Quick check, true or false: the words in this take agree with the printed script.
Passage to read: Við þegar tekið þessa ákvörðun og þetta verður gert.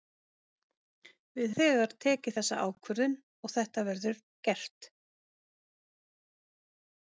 true